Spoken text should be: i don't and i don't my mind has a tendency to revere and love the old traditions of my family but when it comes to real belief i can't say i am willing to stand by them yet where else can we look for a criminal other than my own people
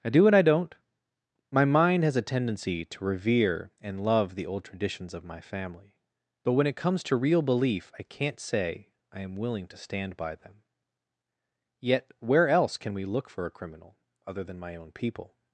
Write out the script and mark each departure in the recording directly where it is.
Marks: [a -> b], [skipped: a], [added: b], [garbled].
i [don't -> do] and i don't my mind has a tendency to revere and love the old traditions of my family but when it comes to real belief i can't say i am willing to stand by them yet where else can we look for a criminal other than my own people